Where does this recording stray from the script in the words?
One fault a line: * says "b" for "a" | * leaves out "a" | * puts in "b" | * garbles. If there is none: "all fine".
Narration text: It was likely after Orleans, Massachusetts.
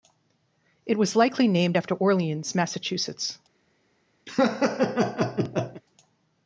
* puts in "named"